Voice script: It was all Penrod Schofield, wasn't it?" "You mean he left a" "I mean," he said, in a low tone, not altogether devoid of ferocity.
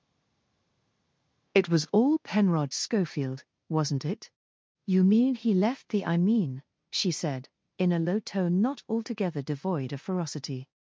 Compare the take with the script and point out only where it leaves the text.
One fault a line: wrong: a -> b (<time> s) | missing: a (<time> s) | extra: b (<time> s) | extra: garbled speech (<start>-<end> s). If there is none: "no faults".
wrong: a -> the (5.9 s)
wrong: he -> she (6.9 s)